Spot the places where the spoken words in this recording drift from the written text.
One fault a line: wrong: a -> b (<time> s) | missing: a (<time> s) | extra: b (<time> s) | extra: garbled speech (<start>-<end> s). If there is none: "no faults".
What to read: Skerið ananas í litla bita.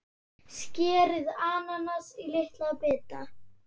no faults